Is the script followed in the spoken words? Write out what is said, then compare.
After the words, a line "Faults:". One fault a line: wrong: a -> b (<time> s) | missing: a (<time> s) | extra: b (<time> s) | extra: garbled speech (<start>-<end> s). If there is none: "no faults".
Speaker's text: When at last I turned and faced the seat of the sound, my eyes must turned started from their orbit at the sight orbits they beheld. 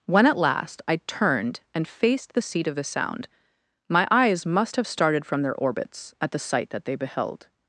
When at last I turned and faced the seat of the sound, my eyes must have started from their orbits at the sight that they beheld.
Faults:
wrong: turned -> have (4.7 s)
wrong: orbit -> orbits (5.5 s)
wrong: orbits -> that (6.7 s)